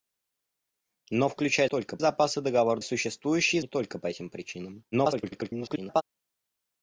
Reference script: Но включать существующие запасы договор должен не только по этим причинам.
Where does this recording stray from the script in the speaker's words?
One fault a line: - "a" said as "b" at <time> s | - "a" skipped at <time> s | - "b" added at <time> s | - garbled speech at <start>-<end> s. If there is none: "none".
- "существующие" said as "только" at 1.6 s
- "должен" said as "существующие" at 2.8 s
- garbled speech at 4.9-6.0 s